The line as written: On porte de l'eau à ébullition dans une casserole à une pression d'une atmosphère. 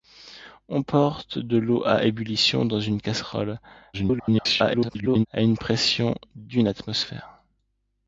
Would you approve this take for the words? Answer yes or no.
no